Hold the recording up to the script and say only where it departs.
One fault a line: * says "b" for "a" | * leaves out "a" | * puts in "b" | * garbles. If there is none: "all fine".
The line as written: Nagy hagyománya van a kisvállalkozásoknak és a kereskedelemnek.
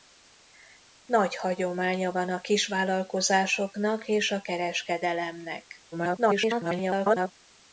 * garbles